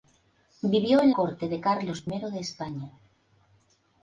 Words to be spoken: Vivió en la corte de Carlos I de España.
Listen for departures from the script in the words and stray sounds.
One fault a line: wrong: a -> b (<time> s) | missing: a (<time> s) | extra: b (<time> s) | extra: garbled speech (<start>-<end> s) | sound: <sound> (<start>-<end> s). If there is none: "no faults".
missing: la (1.1 s)
missing: I (2.0 s)